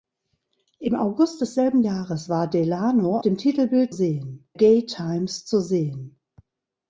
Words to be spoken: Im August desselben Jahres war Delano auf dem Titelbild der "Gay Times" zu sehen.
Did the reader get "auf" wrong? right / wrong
wrong